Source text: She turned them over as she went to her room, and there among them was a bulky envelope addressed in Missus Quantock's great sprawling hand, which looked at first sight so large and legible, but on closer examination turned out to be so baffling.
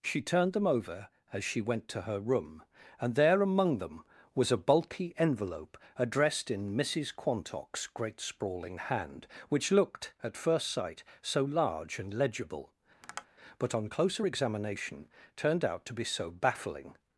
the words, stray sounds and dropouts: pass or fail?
fail